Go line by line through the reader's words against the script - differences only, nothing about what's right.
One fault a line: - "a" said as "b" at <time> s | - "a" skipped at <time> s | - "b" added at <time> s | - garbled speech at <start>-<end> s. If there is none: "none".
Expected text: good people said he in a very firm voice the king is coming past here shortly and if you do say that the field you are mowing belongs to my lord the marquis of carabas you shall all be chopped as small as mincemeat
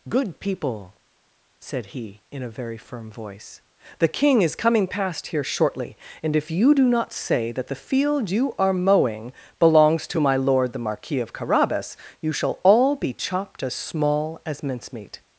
- "not" added at 6.9 s